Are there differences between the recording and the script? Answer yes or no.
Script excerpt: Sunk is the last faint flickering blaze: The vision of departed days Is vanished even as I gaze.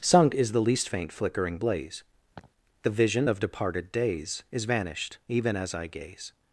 yes